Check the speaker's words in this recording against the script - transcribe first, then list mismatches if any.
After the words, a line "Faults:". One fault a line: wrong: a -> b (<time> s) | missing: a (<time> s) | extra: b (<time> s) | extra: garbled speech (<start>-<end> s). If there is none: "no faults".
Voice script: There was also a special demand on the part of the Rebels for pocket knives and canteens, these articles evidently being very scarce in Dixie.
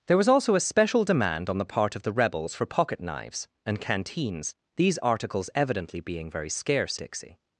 There was also a special demand on the part of the Rebels for pocket knives and canteens, these articles evidently being very scarce Dixie.
Faults:
missing: in (7.0 s)